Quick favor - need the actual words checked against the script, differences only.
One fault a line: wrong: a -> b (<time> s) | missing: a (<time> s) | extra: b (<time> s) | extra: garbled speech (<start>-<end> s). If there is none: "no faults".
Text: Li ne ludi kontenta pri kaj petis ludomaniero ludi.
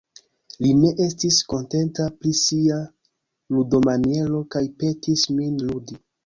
wrong: ludi -> estis (1.1 s)
extra: sia ludomaniero (2.4 s)
wrong: ludomaniero -> min (5.4 s)